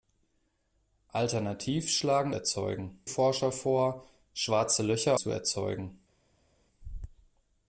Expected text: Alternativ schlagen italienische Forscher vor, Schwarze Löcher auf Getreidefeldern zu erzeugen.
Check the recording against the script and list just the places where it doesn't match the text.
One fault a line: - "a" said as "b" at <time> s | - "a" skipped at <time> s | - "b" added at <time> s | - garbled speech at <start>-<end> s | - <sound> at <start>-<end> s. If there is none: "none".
- "italienische" said as "erzeugen" at 2.3 s
- "auf Getreidefeldern" skipped at 5.2 s